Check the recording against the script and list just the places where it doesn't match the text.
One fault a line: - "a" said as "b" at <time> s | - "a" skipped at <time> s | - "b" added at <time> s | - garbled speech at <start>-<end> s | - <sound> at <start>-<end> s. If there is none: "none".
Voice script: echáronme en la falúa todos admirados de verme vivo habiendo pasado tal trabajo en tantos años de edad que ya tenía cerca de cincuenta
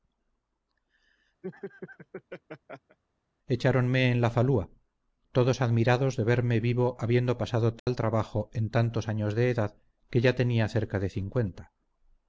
- laugh at 1.4-3.0 s
- dropout at 7.8-7.9 s